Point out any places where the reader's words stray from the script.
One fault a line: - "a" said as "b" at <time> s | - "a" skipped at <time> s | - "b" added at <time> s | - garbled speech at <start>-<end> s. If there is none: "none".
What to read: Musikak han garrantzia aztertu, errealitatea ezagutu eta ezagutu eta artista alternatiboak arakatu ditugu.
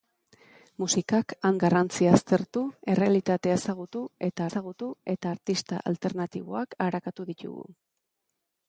none